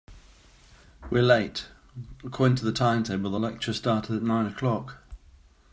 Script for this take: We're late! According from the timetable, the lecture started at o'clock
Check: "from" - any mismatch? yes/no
yes